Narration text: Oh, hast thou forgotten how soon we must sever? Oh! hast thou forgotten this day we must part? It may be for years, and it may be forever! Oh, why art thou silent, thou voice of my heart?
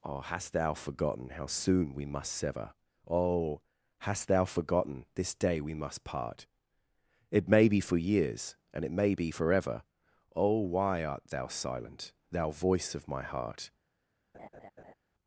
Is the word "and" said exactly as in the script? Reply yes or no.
yes